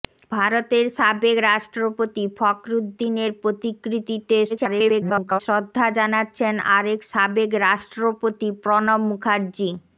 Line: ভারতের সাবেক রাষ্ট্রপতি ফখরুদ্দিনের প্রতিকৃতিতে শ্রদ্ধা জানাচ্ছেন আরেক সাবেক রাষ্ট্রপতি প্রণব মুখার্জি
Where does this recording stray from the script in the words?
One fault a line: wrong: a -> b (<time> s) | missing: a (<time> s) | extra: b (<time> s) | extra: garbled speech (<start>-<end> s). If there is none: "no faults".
extra: garbled speech (4.5-5.4 s)